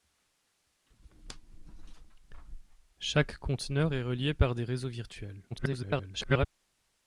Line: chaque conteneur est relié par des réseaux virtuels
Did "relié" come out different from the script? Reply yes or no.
no